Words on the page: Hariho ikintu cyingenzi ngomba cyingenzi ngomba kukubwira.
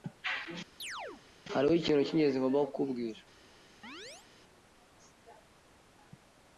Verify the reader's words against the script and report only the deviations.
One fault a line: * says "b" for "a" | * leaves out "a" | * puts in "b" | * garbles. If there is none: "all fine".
* leaves out "cyingenzi ngomba"